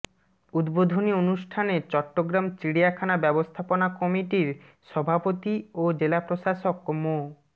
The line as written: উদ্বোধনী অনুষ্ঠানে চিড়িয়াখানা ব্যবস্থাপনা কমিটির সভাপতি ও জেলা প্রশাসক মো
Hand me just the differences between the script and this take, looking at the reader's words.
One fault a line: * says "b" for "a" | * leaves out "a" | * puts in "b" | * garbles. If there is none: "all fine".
* puts in "চট্টগ্রাম"